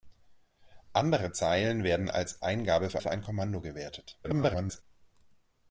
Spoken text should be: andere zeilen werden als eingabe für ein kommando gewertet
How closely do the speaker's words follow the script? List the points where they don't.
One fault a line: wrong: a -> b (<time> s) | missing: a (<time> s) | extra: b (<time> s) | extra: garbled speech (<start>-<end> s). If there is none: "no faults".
extra: für (3.0 s)
extra: garbled speech (4.2-4.8 s)